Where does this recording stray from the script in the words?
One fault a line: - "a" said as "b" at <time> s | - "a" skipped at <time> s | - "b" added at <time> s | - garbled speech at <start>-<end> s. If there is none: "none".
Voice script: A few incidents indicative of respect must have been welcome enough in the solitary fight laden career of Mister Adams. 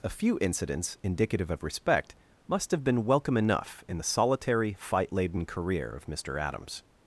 none